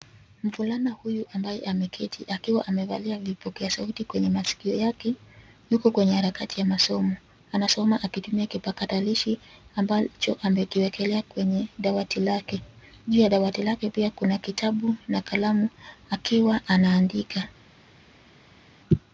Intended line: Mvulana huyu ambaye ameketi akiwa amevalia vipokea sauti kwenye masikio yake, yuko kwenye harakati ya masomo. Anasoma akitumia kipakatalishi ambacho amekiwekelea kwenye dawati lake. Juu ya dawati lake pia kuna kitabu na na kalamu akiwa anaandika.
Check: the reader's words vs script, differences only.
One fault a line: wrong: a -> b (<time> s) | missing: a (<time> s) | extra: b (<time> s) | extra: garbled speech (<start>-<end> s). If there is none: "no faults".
missing: na (15.2 s)